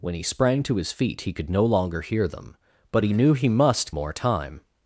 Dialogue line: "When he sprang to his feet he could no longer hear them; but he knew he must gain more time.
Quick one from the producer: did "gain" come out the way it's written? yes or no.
no